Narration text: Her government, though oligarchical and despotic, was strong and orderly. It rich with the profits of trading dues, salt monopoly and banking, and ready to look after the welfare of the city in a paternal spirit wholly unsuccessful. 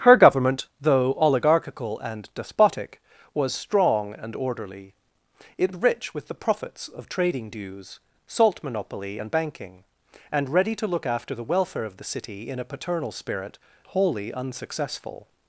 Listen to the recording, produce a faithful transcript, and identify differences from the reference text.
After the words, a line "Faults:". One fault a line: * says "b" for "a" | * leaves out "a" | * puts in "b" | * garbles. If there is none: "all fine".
Her government, though oligarchical and despotic, was strong and orderly. It rich with the profits of trading dues, salt monopoly and banking, and ready to look after the welfare of the city in a paternal spirit wholly unsuccessful.
Faults:
all fine